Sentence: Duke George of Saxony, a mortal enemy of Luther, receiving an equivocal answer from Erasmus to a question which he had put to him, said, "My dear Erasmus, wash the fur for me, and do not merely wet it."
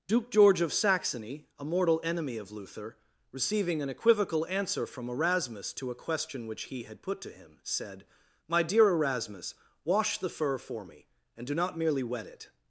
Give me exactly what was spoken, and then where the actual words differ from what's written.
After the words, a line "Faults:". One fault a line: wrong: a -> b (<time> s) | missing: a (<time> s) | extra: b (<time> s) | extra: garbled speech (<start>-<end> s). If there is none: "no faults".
Duke George of Saxony, a mortal enemy of Luther, receiving an equivocal answer from Erasmus to a question which he had put to him, said, "My dear Erasmus, wash the fur for me, and do not merely wet it."
Faults:
no faults